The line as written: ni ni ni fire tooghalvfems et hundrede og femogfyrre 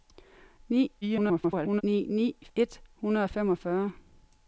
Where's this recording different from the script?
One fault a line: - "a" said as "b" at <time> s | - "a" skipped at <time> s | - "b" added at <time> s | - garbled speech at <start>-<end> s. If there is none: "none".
- garbled speech at 1.0-1.8 s
- "fire tooghalvfems" skipped at 2.3 s